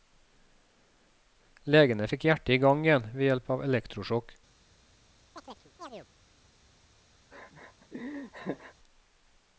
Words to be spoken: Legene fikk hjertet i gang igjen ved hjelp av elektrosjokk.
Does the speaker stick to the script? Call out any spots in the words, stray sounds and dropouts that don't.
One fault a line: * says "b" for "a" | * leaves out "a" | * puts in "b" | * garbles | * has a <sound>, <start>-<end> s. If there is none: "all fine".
* has a chirp, 5.4-6.1 s
* has a laugh, 7.3-8.7 s